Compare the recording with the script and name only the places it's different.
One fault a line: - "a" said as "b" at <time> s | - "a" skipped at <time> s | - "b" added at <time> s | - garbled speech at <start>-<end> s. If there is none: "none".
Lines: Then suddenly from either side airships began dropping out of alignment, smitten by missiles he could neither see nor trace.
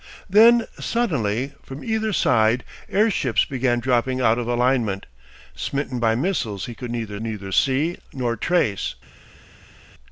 - "neither" added at 7.2 s